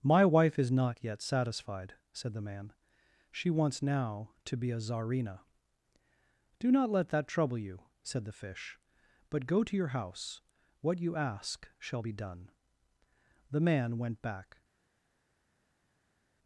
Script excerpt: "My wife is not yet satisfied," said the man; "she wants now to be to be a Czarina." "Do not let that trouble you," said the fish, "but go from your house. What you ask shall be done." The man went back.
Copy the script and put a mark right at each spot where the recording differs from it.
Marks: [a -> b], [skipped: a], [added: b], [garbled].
"My wife is not yet satisfied," said the man; "she wants now to be [skipped: to be] a Czarina." "Do not let that trouble you," said the fish, "but go [from -> to] your house. What you ask shall be done." The man went back.